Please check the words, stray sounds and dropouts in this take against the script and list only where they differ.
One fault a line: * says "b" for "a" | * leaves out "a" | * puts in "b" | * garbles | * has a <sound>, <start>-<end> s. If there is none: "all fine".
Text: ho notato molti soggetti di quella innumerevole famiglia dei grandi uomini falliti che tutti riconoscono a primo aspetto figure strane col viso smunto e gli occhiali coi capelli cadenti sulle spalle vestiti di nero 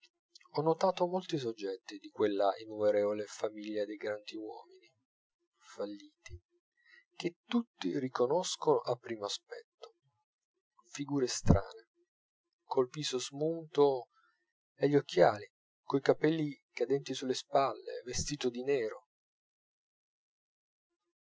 all fine